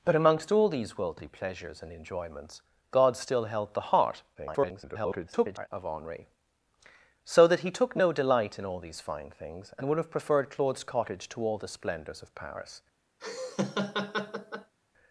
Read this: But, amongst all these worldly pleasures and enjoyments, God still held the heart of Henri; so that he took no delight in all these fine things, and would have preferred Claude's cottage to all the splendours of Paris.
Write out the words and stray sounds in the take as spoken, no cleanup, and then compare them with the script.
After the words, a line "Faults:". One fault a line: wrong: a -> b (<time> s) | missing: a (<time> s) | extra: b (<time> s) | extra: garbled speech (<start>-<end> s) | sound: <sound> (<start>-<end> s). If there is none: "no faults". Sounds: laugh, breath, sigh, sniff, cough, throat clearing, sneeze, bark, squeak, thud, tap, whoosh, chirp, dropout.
But, amongst all these worldly pleasures and enjoyments, God still held the heart [garbled] of Henri; so that he took no delight in all these fine things, and would have preferred Claude's cottage to all the splendours of Paris.
Faults:
extra: garbled speech (4.3-5.7 s)
sound: laugh (13.2-14.7 s)